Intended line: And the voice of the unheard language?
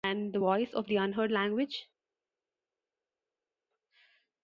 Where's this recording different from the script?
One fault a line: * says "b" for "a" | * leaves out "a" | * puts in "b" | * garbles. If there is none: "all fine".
all fine